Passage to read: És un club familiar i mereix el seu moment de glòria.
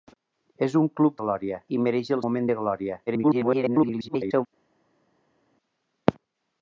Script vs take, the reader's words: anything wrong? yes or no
yes